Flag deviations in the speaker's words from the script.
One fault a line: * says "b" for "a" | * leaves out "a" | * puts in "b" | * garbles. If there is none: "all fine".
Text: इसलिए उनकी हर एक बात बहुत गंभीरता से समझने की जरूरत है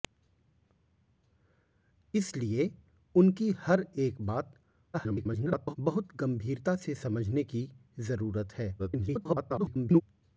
* garbles
* garbles